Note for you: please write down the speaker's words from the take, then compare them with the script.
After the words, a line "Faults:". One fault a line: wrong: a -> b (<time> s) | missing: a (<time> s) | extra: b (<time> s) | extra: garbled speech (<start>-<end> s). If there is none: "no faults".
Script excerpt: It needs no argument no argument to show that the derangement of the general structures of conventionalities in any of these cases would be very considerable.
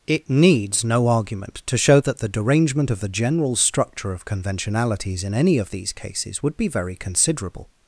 It needs no argument to show that the derangement of the general structure of conventionalities in any of these cases would be very considerable.
Faults:
missing: no argument (1.6 s)
wrong: structures -> structure (3.5 s)